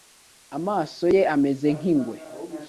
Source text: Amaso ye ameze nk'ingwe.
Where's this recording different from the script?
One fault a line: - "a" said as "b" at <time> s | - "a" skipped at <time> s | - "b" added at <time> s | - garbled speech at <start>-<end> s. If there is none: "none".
none